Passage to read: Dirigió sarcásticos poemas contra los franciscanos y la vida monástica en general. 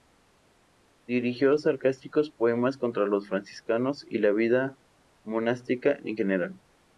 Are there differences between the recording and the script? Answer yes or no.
no